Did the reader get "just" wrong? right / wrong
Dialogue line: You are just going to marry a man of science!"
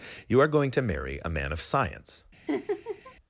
wrong